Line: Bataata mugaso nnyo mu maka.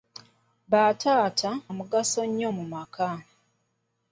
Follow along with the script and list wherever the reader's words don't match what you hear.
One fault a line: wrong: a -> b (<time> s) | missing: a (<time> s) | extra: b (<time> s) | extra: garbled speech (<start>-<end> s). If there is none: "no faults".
no faults